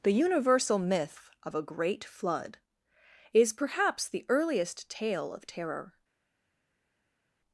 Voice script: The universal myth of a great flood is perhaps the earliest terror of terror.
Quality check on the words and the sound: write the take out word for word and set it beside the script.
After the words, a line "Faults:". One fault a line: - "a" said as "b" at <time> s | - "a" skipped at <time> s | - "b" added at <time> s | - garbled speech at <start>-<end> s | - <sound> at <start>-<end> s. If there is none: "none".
The universal myth of a great flood is perhaps the earliest tale of terror.
Faults:
- "terror" said as "tale" at 4.9 s